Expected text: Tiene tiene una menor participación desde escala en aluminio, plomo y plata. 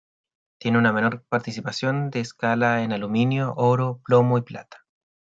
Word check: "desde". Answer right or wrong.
wrong